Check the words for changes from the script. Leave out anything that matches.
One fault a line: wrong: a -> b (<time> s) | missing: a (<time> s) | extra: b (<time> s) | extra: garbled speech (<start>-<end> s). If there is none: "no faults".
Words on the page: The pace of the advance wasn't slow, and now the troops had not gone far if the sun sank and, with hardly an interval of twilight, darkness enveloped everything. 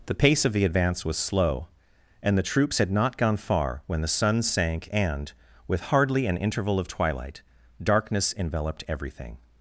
wrong: wasn't -> was (1.1 s)
missing: now (2.4 s)
wrong: if -> when (3.9 s)